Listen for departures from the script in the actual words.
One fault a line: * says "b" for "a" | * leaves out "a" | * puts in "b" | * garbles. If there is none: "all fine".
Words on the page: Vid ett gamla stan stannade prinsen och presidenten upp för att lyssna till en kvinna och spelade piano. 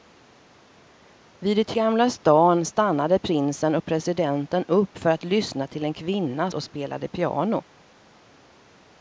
all fine